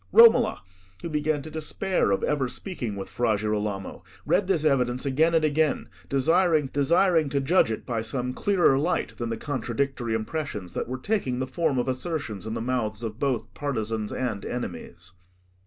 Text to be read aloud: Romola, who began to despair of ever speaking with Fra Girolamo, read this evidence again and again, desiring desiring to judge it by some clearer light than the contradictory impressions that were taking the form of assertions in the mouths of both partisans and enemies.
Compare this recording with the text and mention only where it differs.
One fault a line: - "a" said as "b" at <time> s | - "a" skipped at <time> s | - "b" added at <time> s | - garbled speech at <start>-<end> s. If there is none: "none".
none